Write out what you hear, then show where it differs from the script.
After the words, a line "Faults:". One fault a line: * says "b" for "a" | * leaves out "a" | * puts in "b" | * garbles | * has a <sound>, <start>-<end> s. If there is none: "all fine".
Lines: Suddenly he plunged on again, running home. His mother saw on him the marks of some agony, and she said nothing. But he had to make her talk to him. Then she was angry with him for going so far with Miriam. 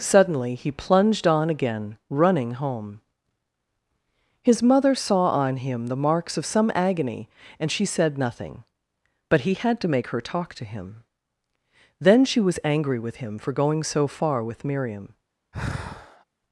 Suddenly he plunged on again, running home. His mother saw on him the marks of some agony, and she said nothing. But he had to make her talk to him. Then she was angry with him for going so far with Miriam.
Faults:
* has a sigh, 15.5-16.2 s